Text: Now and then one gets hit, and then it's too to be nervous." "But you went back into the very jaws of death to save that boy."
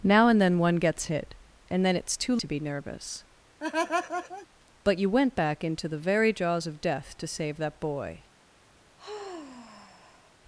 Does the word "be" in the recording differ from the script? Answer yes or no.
no